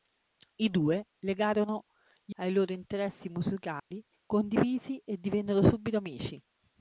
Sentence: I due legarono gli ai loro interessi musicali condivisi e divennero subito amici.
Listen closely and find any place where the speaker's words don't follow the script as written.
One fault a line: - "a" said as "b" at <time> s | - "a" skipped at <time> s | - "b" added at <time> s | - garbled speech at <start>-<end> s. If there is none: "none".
none